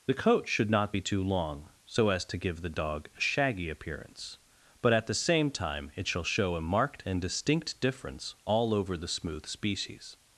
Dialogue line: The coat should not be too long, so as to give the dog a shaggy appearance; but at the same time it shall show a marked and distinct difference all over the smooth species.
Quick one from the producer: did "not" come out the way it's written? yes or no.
yes